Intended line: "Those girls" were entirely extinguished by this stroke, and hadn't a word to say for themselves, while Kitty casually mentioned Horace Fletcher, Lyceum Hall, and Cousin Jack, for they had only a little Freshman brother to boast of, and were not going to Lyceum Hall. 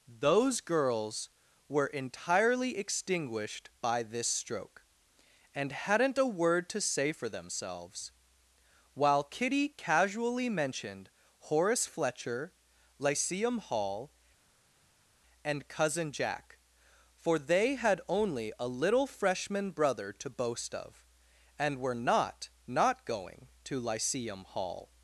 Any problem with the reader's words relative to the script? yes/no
yes